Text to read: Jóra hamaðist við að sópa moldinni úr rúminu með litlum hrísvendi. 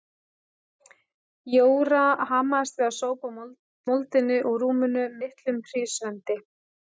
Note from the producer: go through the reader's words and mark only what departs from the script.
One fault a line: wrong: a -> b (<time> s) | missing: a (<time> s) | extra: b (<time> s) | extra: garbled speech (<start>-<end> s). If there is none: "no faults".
missing: sópa (2.9 s)
missing: með (5.0 s)